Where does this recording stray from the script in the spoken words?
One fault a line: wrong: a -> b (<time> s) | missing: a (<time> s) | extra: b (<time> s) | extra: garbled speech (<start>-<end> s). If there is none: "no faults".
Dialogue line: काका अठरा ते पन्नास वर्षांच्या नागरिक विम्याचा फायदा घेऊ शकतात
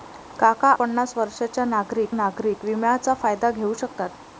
missing: अठरा ते (0.7 s)
extra: नागरिक (2.1 s)